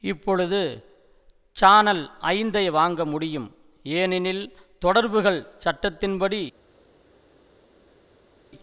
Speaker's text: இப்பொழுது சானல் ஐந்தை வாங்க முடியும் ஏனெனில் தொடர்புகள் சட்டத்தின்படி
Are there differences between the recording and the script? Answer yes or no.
no